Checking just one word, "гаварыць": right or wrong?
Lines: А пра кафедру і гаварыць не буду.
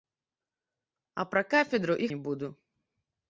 wrong